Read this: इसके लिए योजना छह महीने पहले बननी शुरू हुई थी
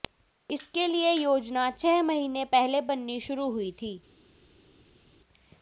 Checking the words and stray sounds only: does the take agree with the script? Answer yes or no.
yes